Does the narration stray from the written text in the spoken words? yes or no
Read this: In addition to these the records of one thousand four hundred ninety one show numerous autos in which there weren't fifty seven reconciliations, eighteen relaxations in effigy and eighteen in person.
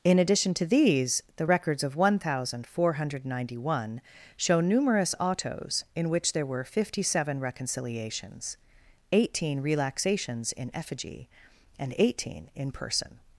yes